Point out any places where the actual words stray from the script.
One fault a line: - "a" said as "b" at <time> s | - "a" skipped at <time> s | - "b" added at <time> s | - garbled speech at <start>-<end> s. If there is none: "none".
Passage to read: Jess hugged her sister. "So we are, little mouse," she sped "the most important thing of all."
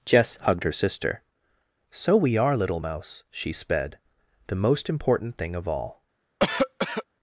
none